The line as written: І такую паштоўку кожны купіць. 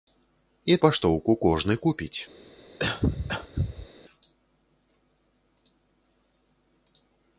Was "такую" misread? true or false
true